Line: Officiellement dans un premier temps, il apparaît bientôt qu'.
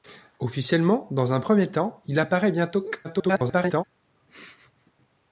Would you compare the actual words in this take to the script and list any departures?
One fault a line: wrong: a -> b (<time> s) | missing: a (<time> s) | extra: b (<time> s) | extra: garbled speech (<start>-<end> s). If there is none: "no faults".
extra: garbled speech (3.0-3.8 s)